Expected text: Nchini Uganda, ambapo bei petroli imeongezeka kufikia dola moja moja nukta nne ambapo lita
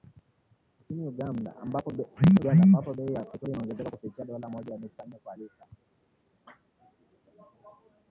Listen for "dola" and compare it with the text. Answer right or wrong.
right